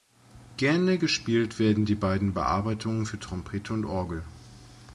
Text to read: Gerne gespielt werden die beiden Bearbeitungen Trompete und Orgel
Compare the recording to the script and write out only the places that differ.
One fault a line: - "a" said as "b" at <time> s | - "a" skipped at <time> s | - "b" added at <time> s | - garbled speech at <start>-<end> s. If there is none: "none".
- "für" added at 3.0 s